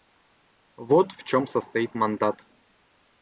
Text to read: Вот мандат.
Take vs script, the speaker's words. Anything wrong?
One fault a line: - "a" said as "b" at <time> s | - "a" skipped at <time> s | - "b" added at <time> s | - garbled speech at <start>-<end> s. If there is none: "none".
- "в чем состоит" added at 1.1 s